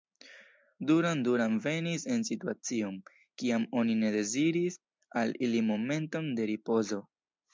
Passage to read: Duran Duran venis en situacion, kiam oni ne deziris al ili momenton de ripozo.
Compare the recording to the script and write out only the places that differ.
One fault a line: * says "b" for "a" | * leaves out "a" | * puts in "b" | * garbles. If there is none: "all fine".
all fine